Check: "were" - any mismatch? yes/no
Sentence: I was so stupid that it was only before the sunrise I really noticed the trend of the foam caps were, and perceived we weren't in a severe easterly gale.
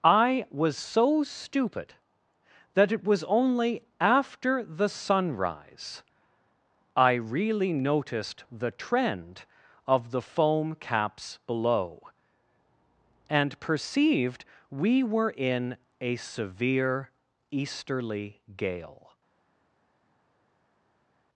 yes